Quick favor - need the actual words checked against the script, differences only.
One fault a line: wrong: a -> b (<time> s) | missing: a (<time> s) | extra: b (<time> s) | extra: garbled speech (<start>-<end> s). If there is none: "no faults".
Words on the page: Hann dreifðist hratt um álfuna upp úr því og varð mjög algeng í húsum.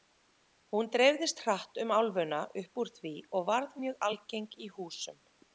wrong: Hann -> Hún (0.8 s)